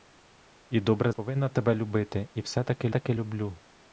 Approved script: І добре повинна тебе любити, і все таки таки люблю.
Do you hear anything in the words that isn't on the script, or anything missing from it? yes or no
no